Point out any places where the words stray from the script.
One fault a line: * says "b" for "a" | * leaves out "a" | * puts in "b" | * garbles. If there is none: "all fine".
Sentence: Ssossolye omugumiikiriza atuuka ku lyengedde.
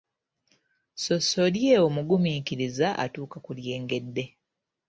all fine